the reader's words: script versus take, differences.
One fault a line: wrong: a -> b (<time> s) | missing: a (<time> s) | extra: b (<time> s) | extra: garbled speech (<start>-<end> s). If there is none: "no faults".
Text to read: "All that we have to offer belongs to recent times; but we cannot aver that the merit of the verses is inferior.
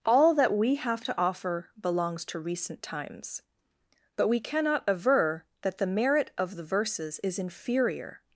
no faults